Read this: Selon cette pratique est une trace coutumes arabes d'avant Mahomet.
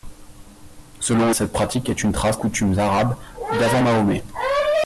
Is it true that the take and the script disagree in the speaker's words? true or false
false